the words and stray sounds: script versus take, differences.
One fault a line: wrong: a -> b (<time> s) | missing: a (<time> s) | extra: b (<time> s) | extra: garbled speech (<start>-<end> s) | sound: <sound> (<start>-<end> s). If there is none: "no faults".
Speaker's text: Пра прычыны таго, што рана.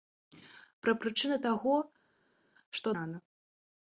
no faults